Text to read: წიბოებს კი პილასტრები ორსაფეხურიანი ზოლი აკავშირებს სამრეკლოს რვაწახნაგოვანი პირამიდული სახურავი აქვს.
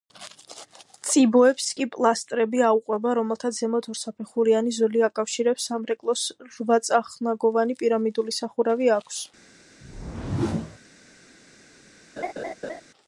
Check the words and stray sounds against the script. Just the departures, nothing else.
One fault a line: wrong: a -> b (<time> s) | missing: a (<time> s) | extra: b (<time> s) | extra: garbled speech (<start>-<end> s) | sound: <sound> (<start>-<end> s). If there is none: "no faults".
extra: აუყვება რომელთაც ზემოთ (2.7 s)
sound: whoosh (9.8-10.8 s)
sound: laugh (12.2-12.8 s)